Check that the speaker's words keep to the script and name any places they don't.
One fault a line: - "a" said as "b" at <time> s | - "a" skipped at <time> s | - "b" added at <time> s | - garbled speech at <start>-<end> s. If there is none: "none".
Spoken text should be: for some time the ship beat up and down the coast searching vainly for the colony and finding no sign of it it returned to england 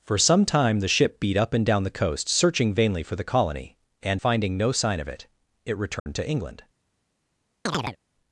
none